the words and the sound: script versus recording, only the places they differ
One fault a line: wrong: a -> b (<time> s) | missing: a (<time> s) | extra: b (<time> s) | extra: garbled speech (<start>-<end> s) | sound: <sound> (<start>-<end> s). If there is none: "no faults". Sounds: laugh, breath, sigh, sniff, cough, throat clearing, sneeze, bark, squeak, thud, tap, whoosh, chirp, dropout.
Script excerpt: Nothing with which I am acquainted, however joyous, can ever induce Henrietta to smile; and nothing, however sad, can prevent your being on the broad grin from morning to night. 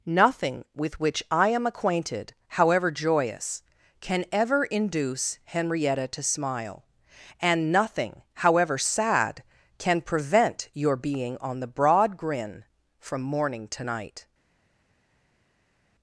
no faults